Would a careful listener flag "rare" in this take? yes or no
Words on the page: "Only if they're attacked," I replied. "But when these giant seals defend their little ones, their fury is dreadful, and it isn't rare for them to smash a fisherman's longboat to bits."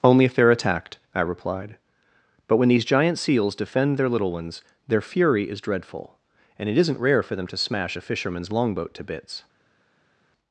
no